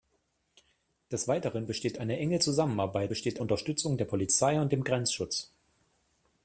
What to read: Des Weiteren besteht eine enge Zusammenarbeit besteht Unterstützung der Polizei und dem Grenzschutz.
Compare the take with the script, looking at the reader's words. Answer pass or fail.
pass